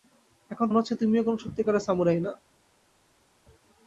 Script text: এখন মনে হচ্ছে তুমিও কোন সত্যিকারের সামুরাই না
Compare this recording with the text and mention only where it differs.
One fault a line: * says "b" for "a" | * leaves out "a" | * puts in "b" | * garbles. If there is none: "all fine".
all fine